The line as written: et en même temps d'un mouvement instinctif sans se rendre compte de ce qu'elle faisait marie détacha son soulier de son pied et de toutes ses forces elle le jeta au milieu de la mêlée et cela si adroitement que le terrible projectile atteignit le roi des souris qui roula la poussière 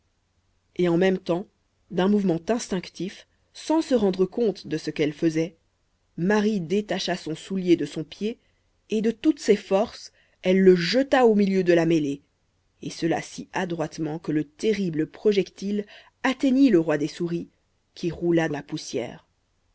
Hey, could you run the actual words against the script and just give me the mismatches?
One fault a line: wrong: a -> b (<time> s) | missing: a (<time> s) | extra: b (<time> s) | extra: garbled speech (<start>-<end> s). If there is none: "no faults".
no faults